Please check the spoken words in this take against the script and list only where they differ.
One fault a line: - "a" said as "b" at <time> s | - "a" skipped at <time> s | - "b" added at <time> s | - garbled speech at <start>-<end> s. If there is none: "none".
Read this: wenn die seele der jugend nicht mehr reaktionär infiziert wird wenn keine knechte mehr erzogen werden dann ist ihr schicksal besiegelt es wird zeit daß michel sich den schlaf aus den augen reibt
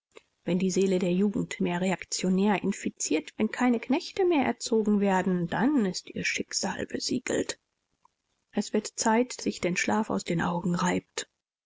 - "nicht" skipped at 1.6 s
- "wird" skipped at 3.4 s
- "daß michel" skipped at 9.4 s